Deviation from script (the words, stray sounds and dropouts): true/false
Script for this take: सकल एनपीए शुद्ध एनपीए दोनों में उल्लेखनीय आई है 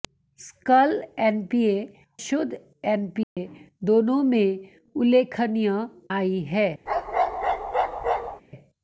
true